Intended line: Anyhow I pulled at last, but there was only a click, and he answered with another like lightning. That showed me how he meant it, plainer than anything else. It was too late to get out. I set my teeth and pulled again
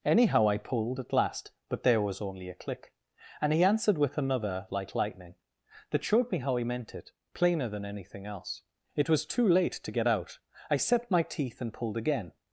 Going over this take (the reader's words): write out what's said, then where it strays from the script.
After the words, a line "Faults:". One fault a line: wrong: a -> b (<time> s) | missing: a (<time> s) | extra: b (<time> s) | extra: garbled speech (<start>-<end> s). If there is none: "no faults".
Anyhow I pulled at last, but there was only a click, and he answered with another like lightning. That showed me how he meant it, plainer than anything else. It was too late to get out. I set my teeth and pulled again
Faults:
no faults